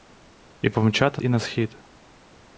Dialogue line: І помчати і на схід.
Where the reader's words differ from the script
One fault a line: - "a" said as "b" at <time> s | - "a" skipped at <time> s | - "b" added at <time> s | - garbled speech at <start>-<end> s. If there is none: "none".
none